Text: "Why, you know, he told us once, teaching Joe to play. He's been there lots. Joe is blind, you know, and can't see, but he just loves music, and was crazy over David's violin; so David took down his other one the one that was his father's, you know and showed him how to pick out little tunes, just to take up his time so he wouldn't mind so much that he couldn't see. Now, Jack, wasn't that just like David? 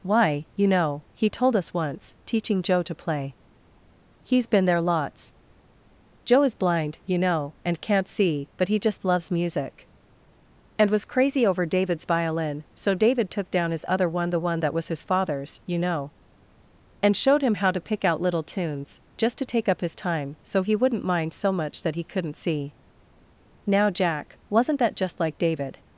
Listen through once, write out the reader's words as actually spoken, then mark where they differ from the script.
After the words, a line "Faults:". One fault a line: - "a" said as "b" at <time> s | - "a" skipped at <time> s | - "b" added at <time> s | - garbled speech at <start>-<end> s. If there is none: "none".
"Why, you know, he told us once, teaching Joe to play. He's been there lots. Joe is blind, you know, and can't see, but he just loves music, and was crazy over David's violin; so David took down his other one the one that was his father's, you know and showed him how to pick out little tunes, just to take up his time so he wouldn't mind so much that he couldn't see. Now, Jack, wasn't that just like David?
Faults:
none